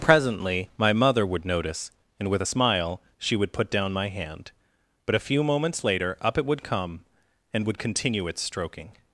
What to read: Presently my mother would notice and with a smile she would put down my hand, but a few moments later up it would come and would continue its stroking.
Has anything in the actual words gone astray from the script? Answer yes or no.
no